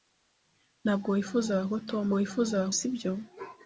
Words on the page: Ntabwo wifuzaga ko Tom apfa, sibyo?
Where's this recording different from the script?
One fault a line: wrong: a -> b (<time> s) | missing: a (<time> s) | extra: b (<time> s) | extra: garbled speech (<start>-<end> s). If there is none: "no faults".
wrong: apfa -> wifuzaga (2.2 s)